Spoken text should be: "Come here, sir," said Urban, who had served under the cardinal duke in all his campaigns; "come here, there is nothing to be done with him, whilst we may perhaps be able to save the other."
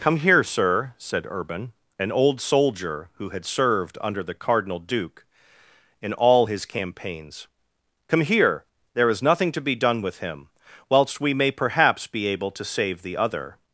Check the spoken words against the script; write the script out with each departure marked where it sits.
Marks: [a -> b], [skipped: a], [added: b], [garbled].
"Come here, sir," said Urban, [added: an old soldier] who had served under the cardinal duke in all his campaigns; "come here, there is nothing to be done with him, whilst we may perhaps be able to save the other."